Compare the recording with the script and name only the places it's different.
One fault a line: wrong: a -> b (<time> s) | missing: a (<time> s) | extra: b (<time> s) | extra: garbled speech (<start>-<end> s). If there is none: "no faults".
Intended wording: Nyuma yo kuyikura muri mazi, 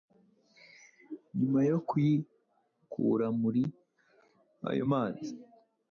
extra: ayo (4.7 s)